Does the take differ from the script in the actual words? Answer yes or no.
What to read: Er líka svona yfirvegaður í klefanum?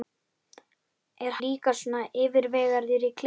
no